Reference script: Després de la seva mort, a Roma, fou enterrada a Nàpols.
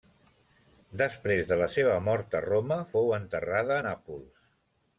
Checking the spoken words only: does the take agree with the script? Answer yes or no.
yes